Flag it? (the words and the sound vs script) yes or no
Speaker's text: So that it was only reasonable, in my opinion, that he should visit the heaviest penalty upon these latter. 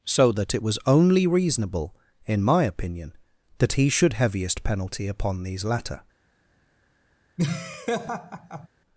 yes